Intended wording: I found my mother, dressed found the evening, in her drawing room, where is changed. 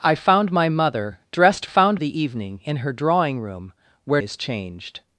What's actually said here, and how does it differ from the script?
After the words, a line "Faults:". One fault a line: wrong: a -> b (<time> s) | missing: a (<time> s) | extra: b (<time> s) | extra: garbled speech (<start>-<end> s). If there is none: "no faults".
I found my mother, dressed found the evening, in her drawing room, where is changed.
Faults:
no faults